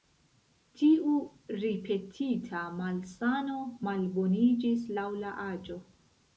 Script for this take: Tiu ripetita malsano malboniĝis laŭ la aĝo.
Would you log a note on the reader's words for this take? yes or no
no